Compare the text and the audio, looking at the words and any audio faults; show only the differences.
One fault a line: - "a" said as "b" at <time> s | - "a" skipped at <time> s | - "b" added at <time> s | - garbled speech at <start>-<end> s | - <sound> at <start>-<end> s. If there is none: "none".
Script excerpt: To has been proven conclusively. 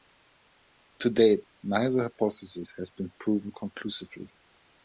- "date neither hypothesis" added at 1.1 s